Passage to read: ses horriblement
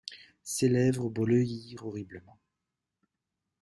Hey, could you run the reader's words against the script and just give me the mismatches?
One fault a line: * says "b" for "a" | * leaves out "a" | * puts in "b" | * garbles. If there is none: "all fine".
* puts in "lèvres bleuirent"